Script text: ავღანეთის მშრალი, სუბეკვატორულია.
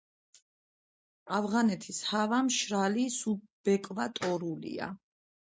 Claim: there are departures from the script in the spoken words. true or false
true